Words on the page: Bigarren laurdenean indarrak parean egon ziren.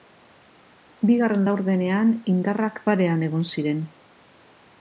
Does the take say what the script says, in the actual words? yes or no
yes